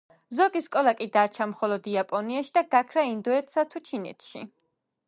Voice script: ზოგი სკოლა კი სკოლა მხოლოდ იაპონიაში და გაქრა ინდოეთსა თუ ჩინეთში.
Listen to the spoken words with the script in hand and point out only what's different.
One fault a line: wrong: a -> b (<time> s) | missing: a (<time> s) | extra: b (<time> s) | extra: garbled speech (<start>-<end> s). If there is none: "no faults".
wrong: სკოლა -> დარჩა (1.2 s)